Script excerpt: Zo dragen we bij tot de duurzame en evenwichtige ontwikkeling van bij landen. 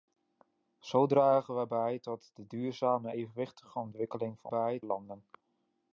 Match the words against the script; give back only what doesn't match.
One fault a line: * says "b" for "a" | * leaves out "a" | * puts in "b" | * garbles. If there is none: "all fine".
all fine